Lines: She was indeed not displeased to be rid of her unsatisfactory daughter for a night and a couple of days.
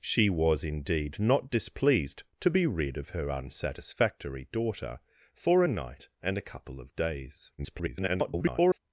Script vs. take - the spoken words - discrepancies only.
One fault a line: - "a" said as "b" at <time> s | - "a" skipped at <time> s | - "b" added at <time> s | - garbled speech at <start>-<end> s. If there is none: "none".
- garbled speech at 7.6-8.8 s